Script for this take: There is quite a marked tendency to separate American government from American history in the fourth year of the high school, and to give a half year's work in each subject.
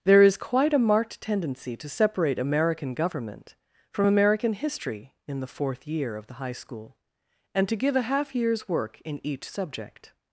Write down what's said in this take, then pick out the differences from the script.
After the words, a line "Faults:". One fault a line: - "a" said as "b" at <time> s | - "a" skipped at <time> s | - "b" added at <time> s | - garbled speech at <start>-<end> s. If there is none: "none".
There is quite a marked tendency to separate American government from American history in the fourth year of the high school, and to give a half year's work in each subject.
Faults:
none